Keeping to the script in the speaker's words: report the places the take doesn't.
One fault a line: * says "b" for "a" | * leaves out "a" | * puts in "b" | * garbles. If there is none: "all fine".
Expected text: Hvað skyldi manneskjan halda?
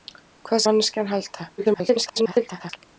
* leaves out "skyldi"
* garbles